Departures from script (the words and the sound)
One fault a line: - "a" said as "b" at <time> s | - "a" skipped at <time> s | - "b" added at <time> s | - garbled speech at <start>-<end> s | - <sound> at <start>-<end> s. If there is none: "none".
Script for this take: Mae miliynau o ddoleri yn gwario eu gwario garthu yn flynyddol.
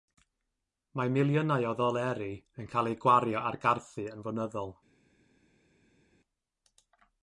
- "gwario" said as "cael" at 2.7 s
- "ar" added at 3.5 s